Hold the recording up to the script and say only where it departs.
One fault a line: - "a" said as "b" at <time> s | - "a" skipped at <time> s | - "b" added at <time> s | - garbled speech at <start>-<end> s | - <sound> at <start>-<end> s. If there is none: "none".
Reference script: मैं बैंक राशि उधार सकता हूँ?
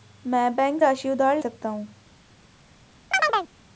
- chirp at 3.1-3.5 s